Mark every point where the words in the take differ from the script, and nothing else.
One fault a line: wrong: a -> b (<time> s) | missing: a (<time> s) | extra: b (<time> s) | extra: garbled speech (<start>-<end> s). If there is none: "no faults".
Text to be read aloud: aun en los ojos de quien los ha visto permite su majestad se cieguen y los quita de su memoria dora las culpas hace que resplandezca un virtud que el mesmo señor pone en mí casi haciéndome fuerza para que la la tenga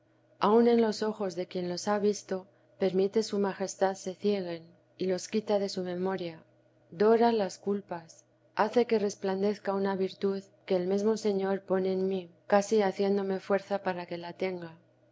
wrong: un -> una (9.8 s)
missing: la (14.3 s)